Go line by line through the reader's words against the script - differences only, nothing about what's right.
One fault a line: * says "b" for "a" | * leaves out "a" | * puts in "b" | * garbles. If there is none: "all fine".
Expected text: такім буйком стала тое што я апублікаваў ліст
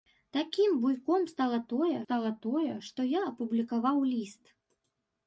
* puts in "стала тое"